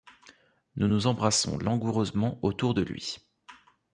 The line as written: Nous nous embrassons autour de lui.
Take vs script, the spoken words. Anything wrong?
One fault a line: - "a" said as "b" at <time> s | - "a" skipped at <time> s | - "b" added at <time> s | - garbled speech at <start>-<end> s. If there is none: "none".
- "langoureusement" added at 1.6 s